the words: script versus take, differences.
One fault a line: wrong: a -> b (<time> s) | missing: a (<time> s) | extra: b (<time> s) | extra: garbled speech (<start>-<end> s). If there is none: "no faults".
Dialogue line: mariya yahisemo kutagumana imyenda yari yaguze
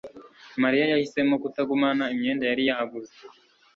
no faults